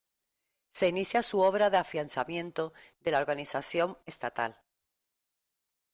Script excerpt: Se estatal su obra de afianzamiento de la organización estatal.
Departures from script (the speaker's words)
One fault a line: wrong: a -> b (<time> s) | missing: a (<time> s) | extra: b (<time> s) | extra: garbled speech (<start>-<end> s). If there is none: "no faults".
wrong: estatal -> inicia (0.9 s)